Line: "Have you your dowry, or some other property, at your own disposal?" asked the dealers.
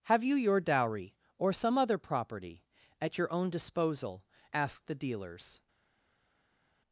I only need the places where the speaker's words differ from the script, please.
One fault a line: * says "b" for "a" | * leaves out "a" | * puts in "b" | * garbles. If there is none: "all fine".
all fine